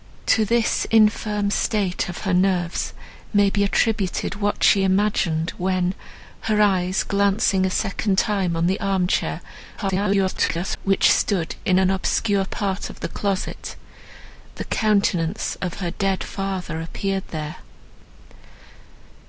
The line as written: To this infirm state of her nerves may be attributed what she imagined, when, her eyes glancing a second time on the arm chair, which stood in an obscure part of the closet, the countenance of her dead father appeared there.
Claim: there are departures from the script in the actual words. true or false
true